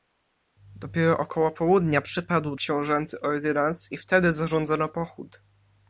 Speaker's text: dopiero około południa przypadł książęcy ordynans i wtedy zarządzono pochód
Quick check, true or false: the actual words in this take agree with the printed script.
true